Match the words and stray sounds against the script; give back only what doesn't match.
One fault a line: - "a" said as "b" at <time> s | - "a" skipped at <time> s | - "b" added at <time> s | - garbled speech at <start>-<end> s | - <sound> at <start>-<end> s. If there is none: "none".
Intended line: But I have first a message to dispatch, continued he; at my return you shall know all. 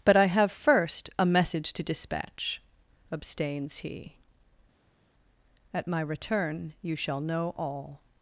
- "continued" said as "abstains" at 3.1 s